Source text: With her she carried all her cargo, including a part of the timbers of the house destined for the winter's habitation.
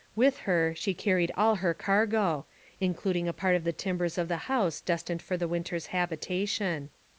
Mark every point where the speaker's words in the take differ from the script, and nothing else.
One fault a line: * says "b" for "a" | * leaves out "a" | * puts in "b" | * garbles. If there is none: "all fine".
all fine